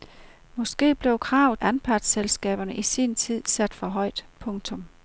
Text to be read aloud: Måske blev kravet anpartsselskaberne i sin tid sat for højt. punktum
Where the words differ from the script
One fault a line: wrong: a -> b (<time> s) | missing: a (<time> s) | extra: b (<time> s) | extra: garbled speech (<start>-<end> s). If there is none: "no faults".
no faults